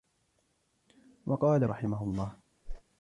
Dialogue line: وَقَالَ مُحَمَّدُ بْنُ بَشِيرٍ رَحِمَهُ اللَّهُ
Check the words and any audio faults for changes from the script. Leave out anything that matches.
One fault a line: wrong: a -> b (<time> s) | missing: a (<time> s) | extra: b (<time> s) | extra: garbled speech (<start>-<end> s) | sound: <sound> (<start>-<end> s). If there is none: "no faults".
missing: مُحَمَّدُ بْنُ بَشِيرٍ (1.7 s)
sound: whoosh (2.6-2.8 s)